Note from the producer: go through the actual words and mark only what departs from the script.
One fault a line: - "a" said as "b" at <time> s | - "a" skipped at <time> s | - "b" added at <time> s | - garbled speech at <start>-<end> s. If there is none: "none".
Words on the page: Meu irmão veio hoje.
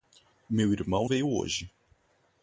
none